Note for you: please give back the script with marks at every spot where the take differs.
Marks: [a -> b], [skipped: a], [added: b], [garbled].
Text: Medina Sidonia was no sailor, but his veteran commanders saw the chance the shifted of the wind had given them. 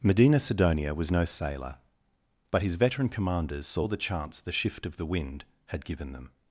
Medina Sidonia was no sailor, but his veteran commanders saw the chance the [shifted -> shift] of the wind had given them.